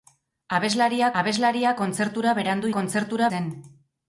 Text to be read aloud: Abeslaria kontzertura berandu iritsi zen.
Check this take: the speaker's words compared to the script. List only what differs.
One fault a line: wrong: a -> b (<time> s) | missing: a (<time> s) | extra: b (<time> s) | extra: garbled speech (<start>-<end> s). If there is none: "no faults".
extra: abeslaria (1.2 s)
wrong: iritsi -> kontzertura (2.8 s)